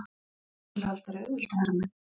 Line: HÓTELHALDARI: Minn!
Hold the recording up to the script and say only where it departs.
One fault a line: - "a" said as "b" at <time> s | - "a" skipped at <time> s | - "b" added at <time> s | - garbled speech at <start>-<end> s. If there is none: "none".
- "Auðvitað herra" added at 1.3 s